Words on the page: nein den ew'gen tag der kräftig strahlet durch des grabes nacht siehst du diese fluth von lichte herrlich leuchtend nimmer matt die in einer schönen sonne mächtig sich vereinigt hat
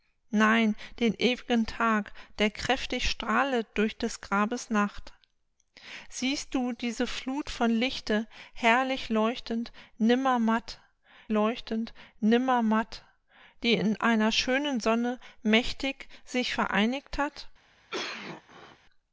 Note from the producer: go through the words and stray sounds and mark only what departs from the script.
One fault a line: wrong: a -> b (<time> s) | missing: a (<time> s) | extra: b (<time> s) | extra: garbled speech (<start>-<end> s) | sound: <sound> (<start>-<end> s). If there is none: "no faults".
extra: leuchtend nimmer matt (11.3 s)
sound: cough (17.9-18.8 s)